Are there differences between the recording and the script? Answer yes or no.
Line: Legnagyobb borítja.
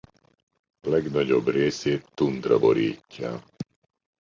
yes